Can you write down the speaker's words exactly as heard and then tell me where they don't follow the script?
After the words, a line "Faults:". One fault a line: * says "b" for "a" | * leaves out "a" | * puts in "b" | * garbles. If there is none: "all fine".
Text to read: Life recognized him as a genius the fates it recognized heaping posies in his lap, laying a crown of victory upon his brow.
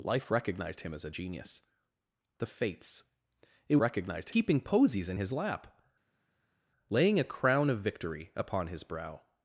Life recognized him as a genius the fates it recognized heaping posies in his lap, laying a crown of victory upon his brow.
Faults:
all fine